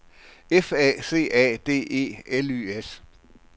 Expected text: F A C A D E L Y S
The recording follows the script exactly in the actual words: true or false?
true